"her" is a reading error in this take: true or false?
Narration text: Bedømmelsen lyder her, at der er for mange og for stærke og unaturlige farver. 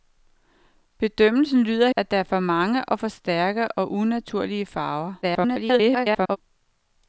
true